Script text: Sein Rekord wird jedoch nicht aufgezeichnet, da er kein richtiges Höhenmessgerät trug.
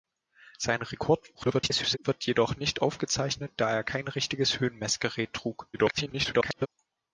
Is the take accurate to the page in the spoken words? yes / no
no